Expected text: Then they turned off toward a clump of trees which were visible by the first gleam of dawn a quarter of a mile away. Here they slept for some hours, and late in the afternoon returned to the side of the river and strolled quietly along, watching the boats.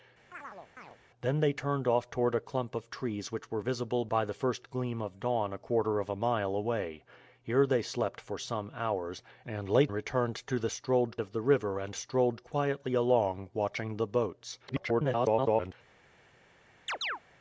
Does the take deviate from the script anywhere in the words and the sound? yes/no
yes